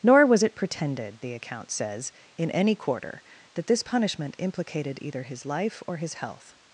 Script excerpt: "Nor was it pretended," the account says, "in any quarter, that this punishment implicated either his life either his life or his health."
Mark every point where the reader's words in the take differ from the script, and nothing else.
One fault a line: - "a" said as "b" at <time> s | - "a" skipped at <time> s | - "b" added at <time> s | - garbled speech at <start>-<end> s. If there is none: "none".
- "either his life" skipped at 5.8 s